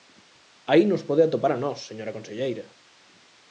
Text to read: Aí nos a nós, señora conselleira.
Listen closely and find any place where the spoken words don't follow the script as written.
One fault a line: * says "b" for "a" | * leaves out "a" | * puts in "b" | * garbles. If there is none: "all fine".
* puts in "pode atopar"